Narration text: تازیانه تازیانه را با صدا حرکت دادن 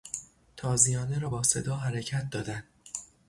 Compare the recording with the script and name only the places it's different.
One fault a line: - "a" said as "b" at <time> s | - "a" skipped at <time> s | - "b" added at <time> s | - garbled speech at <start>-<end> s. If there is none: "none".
- "تازیانه" skipped at 1.2 s